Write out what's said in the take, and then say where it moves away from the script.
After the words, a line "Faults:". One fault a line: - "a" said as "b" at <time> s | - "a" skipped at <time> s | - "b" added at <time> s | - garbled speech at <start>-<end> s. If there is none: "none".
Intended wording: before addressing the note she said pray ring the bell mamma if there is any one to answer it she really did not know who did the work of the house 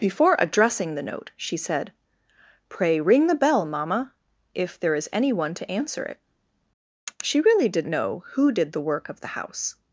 before addressing the note she said pray ring the bell mamma if there is any one to answer it she really did know who did the work of the house
Faults:
- "not" skipped at 7.9 s